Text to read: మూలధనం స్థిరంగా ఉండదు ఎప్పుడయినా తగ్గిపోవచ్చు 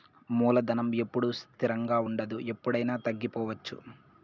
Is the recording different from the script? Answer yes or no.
yes